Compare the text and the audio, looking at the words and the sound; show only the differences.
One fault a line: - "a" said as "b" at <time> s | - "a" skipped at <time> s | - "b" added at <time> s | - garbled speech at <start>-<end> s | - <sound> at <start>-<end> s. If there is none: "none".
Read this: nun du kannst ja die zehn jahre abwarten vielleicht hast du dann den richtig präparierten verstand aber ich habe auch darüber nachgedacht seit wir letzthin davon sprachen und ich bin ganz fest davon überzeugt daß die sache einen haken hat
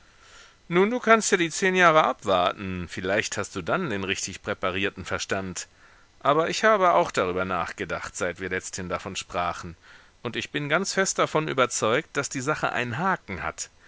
none